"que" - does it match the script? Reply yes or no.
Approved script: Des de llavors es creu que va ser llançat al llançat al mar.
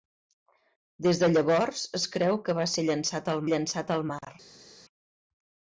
yes